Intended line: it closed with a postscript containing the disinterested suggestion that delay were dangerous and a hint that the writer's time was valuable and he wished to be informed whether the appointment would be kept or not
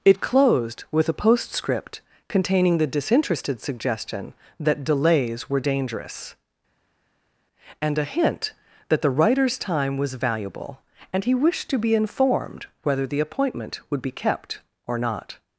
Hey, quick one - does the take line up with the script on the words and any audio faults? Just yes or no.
no